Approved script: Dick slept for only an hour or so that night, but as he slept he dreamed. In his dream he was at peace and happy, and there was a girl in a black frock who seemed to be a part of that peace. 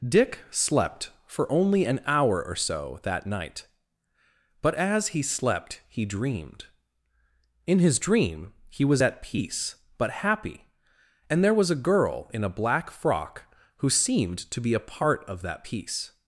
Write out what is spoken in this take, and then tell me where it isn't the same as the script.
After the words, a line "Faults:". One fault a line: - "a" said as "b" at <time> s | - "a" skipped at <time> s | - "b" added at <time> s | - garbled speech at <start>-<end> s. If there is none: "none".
Dick slept for only an hour or so that night, but as he slept he dreamed. In his dream he was at peace but happy, and there was a girl in a black frock who seemed to be a part of that peace.
Faults:
- "and" said as "but" at 10.0 s